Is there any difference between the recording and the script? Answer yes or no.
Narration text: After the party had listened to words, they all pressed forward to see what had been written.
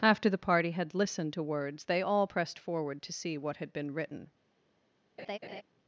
no